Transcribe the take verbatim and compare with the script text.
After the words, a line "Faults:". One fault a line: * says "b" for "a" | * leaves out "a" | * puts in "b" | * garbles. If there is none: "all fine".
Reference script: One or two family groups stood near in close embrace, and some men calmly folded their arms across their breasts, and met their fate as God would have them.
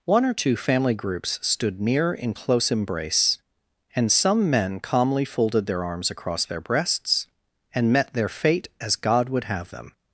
One or two family groups stood near in close embrace, and some men calmly folded their arms across their breasts, and met their fate as God would have them.
Faults:
all fine